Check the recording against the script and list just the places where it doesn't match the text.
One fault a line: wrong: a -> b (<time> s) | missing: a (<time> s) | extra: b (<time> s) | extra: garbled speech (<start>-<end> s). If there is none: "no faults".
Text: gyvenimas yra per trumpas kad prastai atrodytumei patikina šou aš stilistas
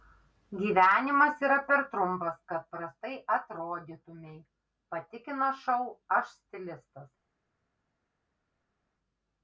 no faults